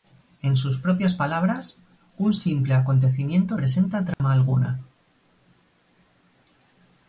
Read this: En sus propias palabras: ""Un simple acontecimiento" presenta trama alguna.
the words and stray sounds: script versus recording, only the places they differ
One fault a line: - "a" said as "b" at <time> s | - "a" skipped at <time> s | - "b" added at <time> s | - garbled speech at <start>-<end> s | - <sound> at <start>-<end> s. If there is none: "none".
- dropout at 4.1-4.2 s